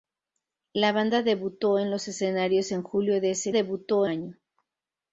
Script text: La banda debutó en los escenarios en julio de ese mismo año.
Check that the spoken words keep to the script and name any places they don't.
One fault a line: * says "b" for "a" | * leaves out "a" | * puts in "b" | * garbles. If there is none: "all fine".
* says "debutó" for "mismo"